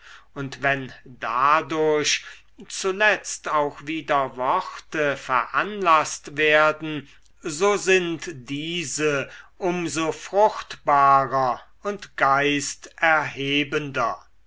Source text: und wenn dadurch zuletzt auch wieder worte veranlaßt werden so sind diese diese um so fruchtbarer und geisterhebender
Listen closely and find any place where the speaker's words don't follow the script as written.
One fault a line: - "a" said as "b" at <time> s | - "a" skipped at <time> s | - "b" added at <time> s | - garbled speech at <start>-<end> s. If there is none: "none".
- "diese" skipped at 9.3 s